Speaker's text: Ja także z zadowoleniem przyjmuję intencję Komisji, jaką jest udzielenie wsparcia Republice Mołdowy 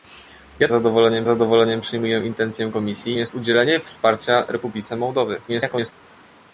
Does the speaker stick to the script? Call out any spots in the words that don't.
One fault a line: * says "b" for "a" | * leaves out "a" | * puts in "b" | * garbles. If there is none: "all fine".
* says "zadowoleniem" for "także"
* leaves out "jaką"
* garbles